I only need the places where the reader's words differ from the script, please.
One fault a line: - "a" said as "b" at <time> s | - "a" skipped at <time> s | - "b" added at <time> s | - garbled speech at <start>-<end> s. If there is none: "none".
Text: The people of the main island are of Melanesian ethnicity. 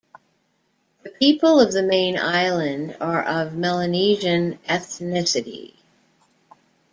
none